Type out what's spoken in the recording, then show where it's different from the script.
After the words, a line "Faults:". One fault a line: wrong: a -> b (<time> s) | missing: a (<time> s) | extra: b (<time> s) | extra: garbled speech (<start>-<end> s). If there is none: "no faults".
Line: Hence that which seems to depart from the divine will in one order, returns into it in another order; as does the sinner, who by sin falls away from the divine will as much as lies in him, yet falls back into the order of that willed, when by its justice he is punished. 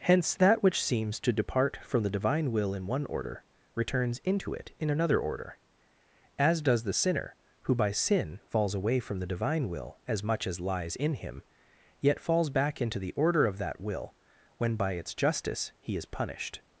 Hence that which seems to depart from the divine will in one order, returns into it in another order; as does the sinner, who by sin falls away from the divine will as much as lies in him, yet falls back into the order of that will, when by its justice he is punished.
Faults:
wrong: willed -> will (13.8 s)